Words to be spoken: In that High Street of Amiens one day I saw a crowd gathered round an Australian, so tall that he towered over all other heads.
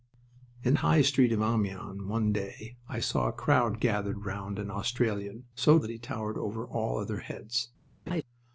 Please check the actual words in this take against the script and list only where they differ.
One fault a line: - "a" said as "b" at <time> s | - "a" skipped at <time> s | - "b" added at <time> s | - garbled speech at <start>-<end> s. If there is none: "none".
- "that" skipped at 0.7 s
- "tall" skipped at 5.8 s